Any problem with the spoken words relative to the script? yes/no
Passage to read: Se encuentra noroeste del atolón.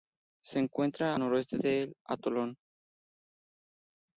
no